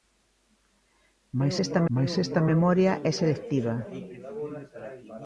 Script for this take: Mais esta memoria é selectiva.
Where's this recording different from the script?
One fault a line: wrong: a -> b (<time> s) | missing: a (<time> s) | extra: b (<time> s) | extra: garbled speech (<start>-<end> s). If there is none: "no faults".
extra: mais esta (1.9 s)